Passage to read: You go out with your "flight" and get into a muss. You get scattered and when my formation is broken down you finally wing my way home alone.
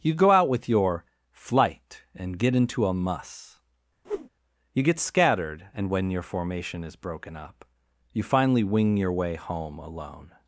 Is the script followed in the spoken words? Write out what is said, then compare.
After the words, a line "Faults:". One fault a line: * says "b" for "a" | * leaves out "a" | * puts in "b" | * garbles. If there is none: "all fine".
You go out with your "flight" and get into a muss. You get scattered and when your formation is broken up you finally wing your way home alone.
Faults:
* says "your" for "my"
* says "up" for "down"
* says "your" for "my"